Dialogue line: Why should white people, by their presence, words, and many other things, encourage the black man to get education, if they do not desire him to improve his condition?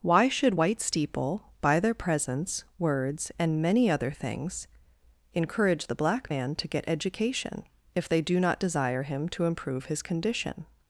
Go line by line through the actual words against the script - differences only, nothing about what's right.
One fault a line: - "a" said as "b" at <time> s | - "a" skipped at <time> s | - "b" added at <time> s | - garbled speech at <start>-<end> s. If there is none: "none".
- "people" said as "steeple" at 0.8 s